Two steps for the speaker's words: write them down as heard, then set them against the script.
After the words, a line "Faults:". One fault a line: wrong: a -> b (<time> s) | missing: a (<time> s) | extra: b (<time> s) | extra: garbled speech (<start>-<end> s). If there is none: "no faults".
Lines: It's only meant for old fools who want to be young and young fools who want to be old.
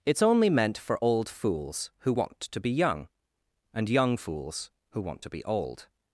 It's only meant for old fools who want to be young and young fools who want to be old.
Faults:
no faults